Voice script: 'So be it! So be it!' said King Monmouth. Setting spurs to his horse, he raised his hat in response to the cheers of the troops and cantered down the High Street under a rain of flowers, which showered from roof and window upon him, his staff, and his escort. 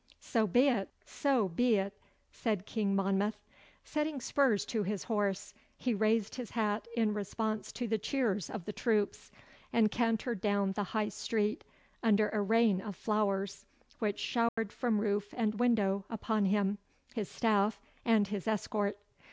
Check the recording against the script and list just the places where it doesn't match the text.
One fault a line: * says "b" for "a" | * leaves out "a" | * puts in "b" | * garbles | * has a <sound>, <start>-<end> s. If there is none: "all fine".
* has a dropout, 14.5-14.6 s